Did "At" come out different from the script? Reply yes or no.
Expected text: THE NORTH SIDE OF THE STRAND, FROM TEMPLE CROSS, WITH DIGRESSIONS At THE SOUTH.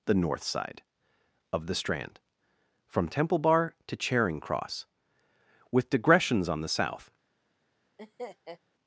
yes